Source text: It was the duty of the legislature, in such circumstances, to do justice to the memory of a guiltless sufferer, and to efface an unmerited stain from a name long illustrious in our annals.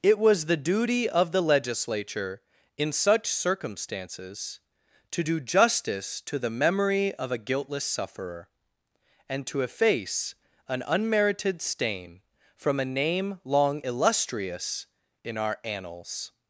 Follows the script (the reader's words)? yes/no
yes